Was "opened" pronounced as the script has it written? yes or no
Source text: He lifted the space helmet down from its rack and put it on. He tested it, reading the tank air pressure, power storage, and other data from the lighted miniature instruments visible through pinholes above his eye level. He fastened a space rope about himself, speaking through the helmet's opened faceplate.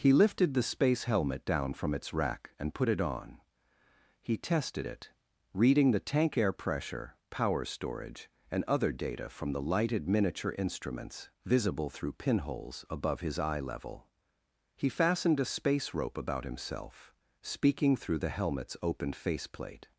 no